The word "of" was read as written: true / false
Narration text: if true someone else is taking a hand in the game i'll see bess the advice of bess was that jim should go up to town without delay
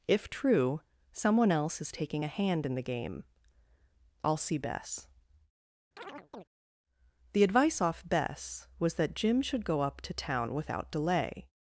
false